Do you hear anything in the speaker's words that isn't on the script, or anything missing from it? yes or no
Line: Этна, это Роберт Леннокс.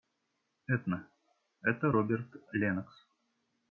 no